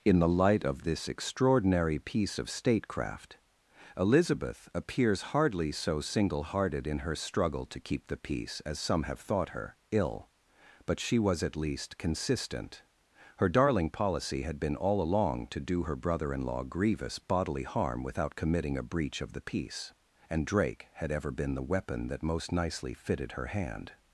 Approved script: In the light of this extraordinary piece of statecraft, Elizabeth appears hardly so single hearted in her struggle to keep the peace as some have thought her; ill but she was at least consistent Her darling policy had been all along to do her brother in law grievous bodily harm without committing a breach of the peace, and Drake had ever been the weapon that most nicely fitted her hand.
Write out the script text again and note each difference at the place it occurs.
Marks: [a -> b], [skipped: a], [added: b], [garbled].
In the light of this extraordinary piece of statecraft, Elizabeth appears hardly so single hearted in her struggle to keep the peace as some have thought her; ill but she was at least consistent Her darling policy had been all along to do her brother in law grievous bodily harm without committing a breach of the peace, and Drake had ever been the weapon that most nicely fitted her hand.